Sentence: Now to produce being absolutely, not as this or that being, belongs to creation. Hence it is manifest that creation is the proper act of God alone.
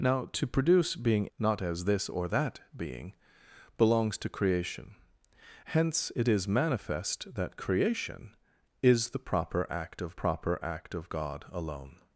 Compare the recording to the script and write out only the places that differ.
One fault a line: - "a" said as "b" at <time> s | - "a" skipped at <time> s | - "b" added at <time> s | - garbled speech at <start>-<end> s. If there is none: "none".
- "absolutely" skipped at 1.3 s
- "proper act of" added at 10.2 s